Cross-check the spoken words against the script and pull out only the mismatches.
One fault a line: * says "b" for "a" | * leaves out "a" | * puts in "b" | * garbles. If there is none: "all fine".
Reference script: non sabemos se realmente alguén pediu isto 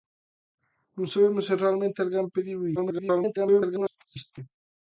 * garbles